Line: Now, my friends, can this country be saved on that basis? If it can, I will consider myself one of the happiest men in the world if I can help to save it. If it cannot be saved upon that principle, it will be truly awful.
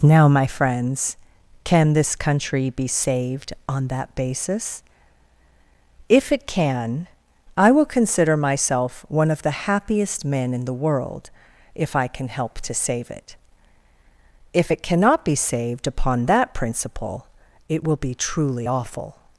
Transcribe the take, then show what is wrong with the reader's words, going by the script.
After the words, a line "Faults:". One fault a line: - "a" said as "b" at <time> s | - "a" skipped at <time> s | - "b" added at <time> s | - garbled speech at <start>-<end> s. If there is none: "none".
Now, my friends, can this country be saved on that basis? If it can, I will consider myself one of the happiest men in the world if I can help to save it. If it cannot be saved upon that principle, it will be truly awful.
Faults:
none